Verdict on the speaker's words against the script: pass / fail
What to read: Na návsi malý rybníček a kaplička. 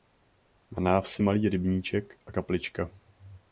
pass